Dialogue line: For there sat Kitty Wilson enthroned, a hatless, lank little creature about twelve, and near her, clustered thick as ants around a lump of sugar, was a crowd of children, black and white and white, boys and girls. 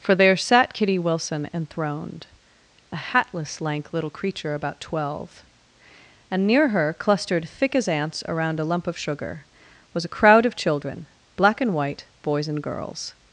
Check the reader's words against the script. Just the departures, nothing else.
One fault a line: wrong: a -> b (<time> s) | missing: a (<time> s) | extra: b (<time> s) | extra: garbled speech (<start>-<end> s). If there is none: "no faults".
missing: and white (12.0 s)